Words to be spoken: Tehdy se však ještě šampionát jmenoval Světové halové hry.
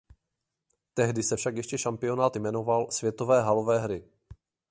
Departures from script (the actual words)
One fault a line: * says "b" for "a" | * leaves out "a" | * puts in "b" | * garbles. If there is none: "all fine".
all fine